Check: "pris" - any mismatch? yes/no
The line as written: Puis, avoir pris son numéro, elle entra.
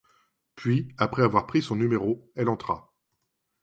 no